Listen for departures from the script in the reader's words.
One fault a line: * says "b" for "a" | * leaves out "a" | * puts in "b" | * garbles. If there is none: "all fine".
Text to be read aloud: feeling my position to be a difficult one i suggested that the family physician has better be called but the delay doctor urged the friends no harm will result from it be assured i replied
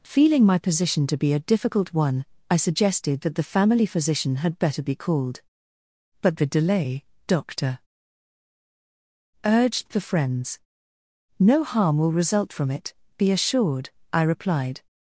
* says "had" for "has"